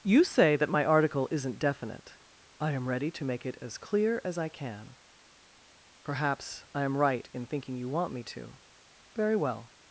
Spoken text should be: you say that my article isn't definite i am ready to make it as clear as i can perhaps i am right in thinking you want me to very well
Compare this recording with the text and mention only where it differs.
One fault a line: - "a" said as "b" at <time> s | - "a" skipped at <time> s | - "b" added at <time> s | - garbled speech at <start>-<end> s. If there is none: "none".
none